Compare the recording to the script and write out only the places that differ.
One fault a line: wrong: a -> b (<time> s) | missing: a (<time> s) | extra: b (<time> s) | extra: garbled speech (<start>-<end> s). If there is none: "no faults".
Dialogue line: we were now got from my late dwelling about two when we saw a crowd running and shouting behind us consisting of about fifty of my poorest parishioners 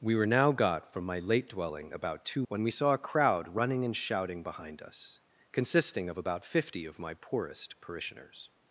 no faults